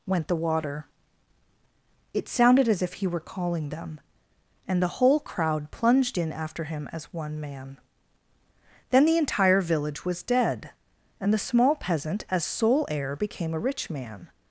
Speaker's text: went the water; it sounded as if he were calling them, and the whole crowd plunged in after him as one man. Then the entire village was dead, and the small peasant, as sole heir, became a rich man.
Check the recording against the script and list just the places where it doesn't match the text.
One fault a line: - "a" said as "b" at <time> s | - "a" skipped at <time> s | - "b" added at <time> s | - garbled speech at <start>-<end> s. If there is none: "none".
none